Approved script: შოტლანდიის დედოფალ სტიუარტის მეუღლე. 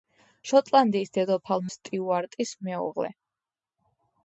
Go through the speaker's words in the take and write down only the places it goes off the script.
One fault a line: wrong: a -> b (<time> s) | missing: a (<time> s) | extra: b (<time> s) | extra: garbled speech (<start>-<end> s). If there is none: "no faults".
no faults